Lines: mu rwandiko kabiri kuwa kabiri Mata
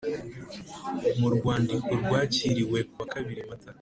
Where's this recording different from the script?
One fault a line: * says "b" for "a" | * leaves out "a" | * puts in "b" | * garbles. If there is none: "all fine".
* says "rwakiriwe" for "kabiri"